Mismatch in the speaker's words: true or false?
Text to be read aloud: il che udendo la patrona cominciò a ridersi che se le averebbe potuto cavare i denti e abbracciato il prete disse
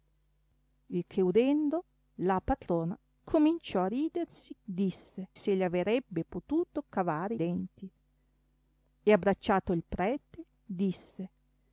true